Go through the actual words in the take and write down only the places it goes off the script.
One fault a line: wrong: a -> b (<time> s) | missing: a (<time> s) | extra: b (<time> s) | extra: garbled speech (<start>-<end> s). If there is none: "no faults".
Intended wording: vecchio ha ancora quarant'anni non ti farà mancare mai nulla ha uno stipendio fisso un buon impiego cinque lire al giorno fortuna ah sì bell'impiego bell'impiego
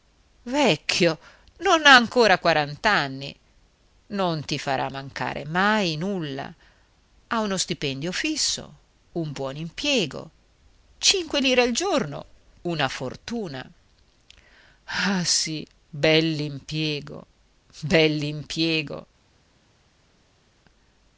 extra: non (1.6 s)
extra: una (12.6 s)